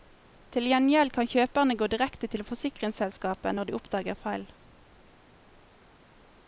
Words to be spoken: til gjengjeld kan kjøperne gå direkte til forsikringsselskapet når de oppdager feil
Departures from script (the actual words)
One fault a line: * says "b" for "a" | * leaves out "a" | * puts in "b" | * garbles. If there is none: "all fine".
all fine